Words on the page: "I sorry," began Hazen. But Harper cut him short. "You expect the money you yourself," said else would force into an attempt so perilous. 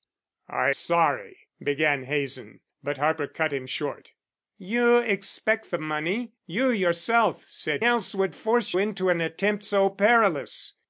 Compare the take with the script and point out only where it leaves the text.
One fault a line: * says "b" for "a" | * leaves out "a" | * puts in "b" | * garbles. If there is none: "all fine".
all fine